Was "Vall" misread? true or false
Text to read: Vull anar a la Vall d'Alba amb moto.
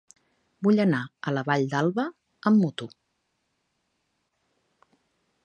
false